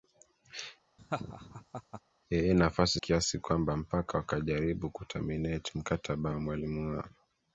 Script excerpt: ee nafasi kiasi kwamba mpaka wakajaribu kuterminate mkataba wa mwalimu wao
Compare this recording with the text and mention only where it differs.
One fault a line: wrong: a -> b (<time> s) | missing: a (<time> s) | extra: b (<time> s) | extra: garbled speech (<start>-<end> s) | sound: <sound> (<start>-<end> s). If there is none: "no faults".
sound: laugh (1.0-2.0 s)